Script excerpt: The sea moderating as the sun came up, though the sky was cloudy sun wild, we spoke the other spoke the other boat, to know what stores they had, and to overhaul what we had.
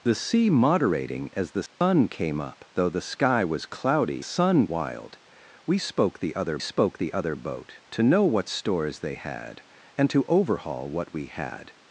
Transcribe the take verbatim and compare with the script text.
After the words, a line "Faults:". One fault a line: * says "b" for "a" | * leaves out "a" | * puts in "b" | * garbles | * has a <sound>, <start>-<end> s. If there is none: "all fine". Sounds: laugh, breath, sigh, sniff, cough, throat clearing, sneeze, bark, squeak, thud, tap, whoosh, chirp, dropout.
The sea moderating as the sun came up, though the sky was cloudy sun wild, we spoke the other spoke the other boat, to know what stores they had, and to overhaul what we had.
Faults:
* has a dropout, 1.7-1.8 s